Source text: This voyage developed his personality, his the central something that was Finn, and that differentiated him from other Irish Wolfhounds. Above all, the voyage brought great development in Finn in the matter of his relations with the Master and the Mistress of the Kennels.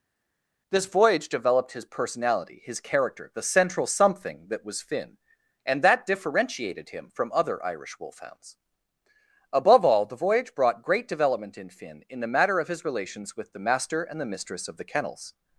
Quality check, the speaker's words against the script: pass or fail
fail